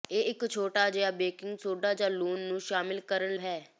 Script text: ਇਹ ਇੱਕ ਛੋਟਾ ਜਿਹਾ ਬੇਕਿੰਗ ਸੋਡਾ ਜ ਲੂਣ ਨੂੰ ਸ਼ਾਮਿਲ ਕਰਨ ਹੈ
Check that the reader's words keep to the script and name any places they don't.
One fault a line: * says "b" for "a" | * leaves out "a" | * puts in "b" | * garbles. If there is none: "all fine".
all fine